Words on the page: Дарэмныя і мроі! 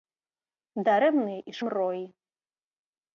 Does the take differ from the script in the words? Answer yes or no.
no